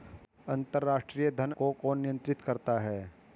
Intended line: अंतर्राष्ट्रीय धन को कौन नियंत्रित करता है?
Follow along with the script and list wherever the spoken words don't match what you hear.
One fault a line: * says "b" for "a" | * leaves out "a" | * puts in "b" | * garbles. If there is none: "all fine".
all fine